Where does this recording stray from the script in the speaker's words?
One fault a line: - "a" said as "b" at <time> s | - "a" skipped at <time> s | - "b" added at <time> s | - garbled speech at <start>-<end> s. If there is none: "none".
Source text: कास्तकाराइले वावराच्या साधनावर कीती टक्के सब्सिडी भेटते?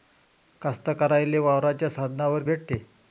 - "कीती टक्के सब्सिडी" skipped at 2.4 s